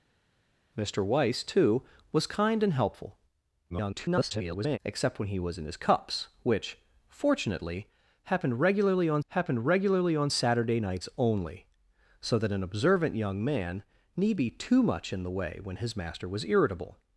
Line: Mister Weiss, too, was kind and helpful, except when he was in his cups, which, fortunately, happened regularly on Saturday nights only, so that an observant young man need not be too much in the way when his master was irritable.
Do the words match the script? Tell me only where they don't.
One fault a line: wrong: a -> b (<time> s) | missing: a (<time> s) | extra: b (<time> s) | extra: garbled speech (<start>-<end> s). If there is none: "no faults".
extra: garbled speech (3.7-4.8 s)
extra: happened regularly on (9.3 s)
missing: not (14.4 s)